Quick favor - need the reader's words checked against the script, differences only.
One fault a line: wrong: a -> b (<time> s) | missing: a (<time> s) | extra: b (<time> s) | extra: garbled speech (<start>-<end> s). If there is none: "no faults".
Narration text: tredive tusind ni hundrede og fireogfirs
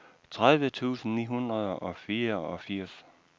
no faults